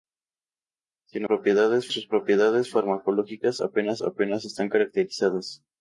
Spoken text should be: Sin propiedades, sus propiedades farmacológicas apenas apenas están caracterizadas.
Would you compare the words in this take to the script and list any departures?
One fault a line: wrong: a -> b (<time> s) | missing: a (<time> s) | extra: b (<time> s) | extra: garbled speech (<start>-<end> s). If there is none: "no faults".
no faults